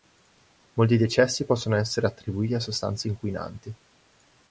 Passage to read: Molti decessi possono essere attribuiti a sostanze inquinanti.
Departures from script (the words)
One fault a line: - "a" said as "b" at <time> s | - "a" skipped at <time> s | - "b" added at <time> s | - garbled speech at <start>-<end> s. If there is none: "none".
none